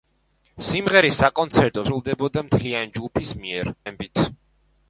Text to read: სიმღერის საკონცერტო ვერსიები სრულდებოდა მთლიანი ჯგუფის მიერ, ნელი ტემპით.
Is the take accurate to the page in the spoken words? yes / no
no